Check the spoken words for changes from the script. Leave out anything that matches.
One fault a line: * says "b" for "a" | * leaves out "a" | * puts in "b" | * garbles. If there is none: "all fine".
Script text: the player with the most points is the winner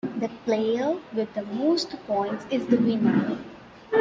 all fine